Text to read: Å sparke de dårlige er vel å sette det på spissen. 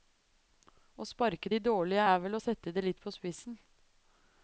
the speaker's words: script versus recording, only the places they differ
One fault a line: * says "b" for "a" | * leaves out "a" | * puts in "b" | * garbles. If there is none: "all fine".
* puts in "litt"